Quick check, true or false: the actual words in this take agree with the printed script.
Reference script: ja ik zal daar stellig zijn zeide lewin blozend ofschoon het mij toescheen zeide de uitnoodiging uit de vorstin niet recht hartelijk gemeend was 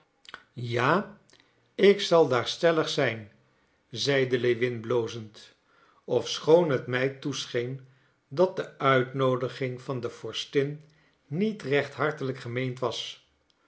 false